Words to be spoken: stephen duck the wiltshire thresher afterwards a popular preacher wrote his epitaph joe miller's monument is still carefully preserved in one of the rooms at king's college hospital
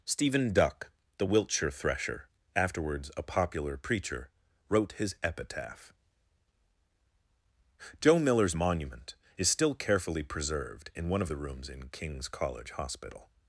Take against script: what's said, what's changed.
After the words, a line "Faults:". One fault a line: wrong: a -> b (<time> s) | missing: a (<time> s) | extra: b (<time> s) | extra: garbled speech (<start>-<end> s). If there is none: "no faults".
stephen duck the wiltshire thresher afterwards a popular preacher wrote his epitaph joe miller's monument is still carefully preserved in one of the rooms in king's college hospital
Faults:
wrong: at -> in (11.7 s)